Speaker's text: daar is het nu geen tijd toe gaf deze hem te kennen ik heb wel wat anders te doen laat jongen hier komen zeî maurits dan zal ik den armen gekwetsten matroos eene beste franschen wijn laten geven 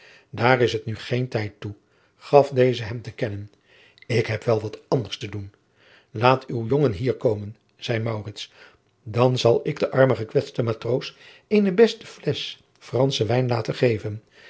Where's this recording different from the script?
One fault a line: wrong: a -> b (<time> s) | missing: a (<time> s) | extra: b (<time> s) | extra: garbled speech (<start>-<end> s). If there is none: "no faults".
extra: uw (6.4 s)
extra: flesch (12.1 s)